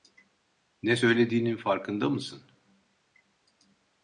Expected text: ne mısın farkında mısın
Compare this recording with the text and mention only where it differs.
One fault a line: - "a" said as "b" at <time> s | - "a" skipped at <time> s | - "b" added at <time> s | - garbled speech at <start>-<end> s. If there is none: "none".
- "mısın" said as "söylediğinin" at 0.9 s